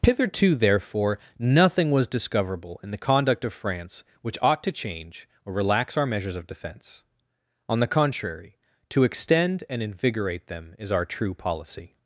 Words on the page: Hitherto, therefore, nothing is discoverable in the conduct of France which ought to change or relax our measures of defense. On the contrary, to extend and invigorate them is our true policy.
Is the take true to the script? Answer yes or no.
no